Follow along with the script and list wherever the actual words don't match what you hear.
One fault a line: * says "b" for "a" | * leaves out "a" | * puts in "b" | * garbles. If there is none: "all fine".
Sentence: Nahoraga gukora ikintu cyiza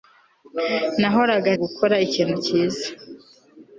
all fine